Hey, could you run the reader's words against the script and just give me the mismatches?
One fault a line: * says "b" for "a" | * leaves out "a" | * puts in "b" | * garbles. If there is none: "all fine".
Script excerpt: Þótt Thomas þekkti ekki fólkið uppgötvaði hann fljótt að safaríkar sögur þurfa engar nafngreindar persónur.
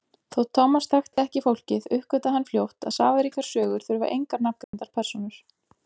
all fine